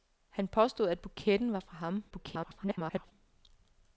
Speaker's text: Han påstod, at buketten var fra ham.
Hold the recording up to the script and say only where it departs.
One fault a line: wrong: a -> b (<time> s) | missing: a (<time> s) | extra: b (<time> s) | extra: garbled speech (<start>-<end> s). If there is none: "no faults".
extra: garbled speech (2.1-3.1 s)